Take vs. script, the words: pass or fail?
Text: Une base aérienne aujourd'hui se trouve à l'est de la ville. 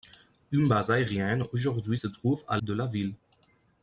fail